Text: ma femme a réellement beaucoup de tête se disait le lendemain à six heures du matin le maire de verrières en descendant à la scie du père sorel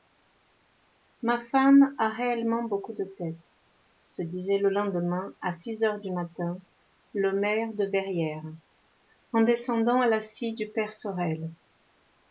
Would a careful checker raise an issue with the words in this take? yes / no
no